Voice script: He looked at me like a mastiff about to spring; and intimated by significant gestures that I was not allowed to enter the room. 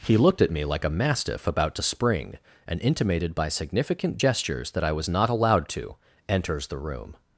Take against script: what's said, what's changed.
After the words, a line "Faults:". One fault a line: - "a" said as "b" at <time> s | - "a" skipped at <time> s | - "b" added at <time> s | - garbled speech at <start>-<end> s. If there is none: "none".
He looked at me like a mastiff about to spring; and intimated by significant gestures that I was not allowed to enters the room.
Faults:
- "enter" said as "enters" at 6.3 s